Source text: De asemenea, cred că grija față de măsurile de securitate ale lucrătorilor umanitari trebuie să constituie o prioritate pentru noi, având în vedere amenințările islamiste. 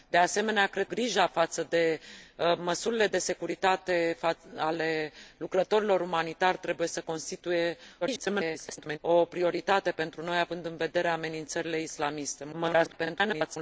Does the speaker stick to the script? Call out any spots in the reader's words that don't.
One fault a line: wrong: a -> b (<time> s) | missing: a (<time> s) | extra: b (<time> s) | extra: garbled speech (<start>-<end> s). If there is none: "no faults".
missing: că (0.9 s)
extra: garbled speech (8.0-9.0 s)
extra: garbled speech (12.5-13.6 s)